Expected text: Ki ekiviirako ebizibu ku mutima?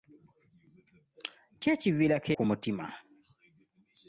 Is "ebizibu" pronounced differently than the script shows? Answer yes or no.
yes